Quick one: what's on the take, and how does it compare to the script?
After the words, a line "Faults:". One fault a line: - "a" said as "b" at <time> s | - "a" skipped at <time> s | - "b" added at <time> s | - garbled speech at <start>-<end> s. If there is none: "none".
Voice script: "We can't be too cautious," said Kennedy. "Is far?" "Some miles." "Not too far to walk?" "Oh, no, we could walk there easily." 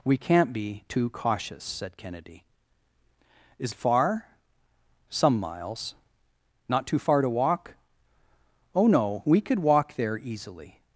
"We can't be too cautious," said Kennedy. "Is far?" "Some miles." "Not too far to walk?" "Oh, no, we could walk there easily."
Faults:
none